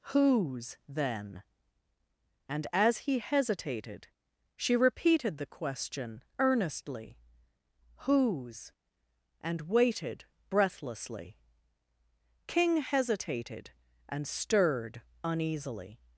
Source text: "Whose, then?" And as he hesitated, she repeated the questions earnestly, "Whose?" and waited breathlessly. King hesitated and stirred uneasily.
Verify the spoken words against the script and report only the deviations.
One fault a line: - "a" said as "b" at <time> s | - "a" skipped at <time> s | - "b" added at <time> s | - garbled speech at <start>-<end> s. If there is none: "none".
- "questions" said as "question" at 5.5 s